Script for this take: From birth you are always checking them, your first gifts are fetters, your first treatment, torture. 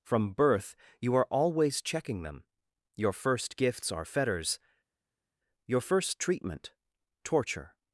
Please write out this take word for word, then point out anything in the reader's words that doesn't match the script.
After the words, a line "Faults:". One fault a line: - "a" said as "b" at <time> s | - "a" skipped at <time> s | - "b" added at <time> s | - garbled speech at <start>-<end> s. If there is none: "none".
From birth you are always checking them, your first gifts are fetters, your first treatment, torture.
Faults:
none